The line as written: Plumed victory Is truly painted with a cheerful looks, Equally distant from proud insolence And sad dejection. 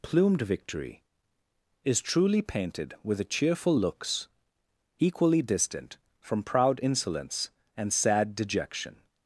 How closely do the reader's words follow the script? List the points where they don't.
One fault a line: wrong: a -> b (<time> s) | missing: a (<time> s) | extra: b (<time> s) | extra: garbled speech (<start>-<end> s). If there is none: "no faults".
no faults